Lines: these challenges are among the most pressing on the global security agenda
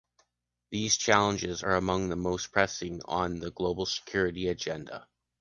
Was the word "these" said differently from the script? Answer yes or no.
no